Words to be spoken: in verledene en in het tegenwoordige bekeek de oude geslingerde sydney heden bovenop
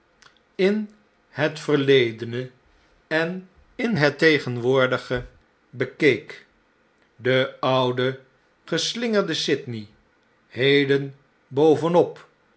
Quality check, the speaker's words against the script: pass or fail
fail